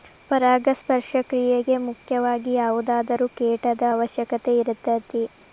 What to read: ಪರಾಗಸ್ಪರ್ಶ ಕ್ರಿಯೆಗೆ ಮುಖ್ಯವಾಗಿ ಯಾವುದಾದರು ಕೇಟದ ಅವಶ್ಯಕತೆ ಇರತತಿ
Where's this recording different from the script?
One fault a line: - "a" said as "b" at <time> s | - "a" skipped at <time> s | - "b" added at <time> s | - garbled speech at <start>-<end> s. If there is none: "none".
none